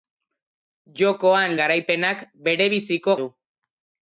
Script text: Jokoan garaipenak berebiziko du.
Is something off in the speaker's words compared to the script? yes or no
no